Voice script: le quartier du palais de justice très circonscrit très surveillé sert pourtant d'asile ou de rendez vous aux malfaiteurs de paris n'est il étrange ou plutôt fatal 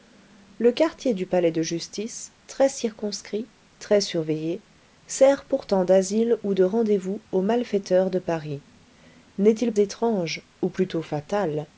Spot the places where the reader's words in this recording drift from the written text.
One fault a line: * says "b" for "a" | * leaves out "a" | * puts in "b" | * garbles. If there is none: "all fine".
all fine